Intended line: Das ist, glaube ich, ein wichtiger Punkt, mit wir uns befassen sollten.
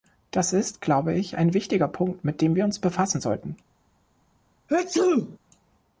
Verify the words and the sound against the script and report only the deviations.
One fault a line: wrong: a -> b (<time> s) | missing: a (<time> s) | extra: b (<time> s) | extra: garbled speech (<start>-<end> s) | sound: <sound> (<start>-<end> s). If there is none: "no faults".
extra: dem (2.4 s)
sound: sneeze (4.7-5.4 s)